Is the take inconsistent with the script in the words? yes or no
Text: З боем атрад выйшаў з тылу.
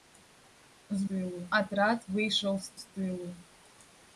yes